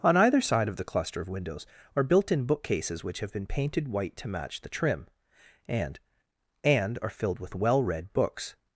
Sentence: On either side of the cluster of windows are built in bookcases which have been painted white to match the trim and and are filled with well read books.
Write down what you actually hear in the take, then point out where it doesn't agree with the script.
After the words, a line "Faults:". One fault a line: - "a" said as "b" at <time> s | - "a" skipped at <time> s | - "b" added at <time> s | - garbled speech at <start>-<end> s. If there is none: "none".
On either side of the cluster of windows are built in bookcases which have been painted white to match the trim and and are filled with well read books.
Faults:
none